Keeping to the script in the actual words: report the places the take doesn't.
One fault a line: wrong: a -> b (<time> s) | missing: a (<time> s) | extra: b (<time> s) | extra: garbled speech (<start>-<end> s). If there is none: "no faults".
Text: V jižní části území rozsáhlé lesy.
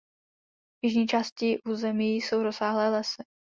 extra: jsou (2.1 s)